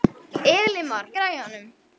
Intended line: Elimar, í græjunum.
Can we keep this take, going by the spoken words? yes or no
yes